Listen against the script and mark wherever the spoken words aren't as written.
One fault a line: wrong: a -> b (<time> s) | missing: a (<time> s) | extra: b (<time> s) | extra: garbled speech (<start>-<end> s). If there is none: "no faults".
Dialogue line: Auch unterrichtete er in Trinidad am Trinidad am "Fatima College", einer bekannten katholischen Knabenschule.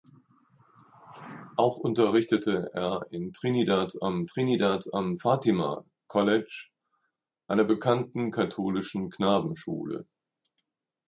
no faults